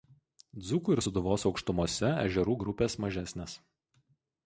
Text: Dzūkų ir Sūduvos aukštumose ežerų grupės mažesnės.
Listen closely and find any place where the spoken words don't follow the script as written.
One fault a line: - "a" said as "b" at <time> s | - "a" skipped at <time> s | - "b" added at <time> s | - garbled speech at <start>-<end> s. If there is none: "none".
none